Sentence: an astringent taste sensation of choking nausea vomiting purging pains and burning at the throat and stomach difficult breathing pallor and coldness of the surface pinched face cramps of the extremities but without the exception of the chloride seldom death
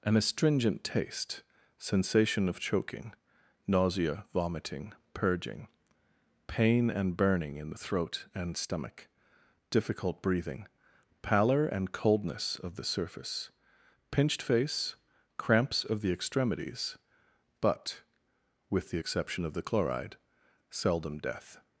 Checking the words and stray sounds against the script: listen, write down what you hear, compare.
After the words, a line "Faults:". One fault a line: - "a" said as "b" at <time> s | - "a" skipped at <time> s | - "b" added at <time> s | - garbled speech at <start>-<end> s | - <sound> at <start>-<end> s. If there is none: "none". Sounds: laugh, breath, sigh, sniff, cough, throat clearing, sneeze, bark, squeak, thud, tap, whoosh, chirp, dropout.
an astringent taste sensation of choking nausea vomiting purging pain and burning in the throat and stomach difficult breathing pallor and coldness of the surface pinched face cramps of the extremities but with the exception of the chloride seldom death
Faults:
- "pains" said as "pain" at 6.5 s
- "at" said as "in" at 7.6 s
- "without" said as "with" at 18.7 s